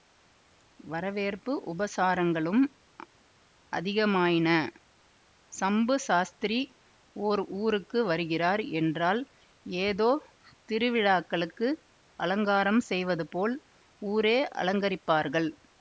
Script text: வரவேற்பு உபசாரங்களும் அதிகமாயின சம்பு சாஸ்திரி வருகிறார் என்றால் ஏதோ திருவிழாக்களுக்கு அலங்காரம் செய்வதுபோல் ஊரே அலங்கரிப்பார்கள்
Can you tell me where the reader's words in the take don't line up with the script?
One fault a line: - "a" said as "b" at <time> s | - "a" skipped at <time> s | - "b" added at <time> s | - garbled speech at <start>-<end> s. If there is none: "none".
- "ஓர் ஊருக்கு" added at 7.2 s